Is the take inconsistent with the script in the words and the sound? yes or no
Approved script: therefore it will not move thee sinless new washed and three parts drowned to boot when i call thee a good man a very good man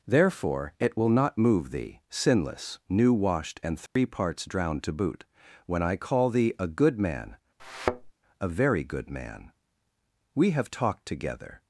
yes